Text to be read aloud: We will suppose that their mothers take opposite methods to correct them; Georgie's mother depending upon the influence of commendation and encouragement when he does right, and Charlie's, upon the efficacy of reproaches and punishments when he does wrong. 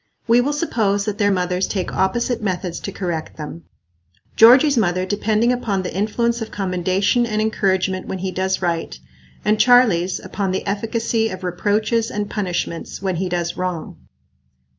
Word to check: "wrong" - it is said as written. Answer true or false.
true